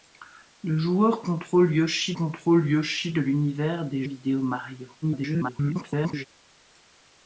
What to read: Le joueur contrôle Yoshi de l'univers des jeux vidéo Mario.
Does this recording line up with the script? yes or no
no